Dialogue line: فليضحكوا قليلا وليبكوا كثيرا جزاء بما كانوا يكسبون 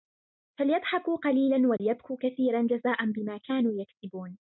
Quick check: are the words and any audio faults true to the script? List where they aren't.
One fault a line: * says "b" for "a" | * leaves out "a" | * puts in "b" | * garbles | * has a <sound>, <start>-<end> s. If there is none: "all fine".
* has a dropout, 1.8-1.8 s